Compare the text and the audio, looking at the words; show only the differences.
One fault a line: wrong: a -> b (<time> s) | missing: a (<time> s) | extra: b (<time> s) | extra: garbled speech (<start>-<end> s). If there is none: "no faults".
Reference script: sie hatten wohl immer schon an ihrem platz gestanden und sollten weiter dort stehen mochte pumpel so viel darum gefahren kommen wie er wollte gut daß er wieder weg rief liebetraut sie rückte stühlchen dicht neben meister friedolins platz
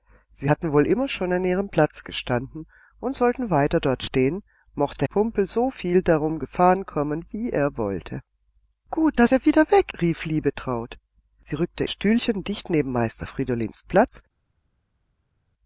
no faults